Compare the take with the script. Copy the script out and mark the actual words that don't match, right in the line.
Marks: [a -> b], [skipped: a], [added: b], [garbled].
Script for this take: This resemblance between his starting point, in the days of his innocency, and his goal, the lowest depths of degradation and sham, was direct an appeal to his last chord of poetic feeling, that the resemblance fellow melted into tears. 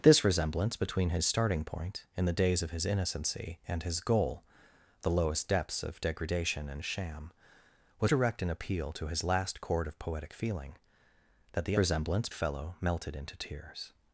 This resemblance between his starting point, in the days of his innocency, and his goal, the lowest depths of degradation and sham, was direct an appeal to his last chord of poetic feeling, that the resemblance fellow melted into tears.